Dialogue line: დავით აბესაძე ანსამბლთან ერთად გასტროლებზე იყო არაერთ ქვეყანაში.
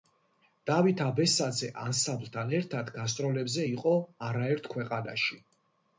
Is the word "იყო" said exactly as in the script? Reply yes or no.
yes